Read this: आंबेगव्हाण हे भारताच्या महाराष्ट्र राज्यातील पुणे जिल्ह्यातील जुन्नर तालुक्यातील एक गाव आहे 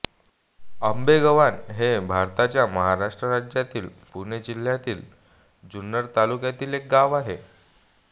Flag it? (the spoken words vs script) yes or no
no